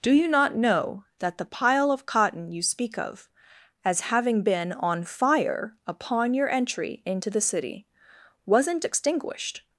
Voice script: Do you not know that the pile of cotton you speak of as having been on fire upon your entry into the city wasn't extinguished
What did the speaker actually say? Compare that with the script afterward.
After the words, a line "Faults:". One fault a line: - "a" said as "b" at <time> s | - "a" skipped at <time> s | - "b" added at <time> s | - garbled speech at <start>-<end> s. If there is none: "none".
Do you not know that the pile of cotton you speak of as having been on fire upon your entry into the city wasn't extinguished
Faults:
none